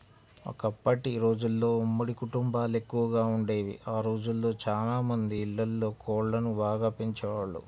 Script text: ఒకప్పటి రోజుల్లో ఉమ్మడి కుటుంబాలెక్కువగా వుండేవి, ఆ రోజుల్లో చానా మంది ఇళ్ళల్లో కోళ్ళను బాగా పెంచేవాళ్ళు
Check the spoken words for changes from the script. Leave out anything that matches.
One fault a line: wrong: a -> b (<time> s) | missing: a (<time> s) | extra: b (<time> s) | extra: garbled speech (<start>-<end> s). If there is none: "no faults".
no faults